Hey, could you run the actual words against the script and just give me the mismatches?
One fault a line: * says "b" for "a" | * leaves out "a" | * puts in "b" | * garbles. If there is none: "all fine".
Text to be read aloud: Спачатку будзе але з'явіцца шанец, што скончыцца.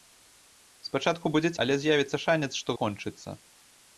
all fine